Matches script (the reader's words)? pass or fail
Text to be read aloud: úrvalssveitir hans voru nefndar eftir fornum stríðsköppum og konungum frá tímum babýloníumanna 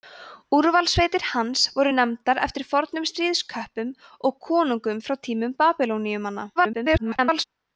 fail